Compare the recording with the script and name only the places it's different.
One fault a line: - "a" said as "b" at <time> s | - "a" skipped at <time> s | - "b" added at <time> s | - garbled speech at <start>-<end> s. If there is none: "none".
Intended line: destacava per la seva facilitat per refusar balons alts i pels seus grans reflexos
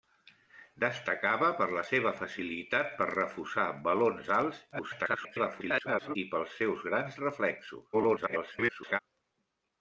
- garbled speech at 4.7-6.2 s
- garbled speech at 7.9-9.0 s